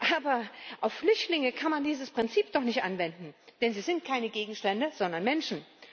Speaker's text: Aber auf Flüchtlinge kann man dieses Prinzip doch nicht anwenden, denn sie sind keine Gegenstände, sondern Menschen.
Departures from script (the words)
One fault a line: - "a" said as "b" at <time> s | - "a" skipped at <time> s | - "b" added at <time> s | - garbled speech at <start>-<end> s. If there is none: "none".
none